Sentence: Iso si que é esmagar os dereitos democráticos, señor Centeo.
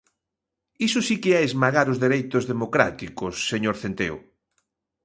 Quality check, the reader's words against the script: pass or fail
pass